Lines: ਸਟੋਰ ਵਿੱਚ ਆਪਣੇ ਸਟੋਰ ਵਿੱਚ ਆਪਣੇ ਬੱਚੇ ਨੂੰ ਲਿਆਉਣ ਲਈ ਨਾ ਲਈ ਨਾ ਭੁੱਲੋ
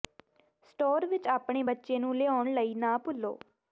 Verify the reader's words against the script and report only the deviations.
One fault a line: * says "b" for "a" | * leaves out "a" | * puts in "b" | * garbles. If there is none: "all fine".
* leaves out "ਸਟੋਰ ਵਿੱਚ ਆਪਣੇ"
* leaves out "ਲਈ ਨਾ"